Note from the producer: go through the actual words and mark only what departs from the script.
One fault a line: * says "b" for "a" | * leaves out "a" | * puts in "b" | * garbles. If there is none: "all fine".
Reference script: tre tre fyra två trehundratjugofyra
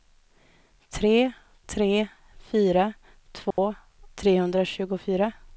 all fine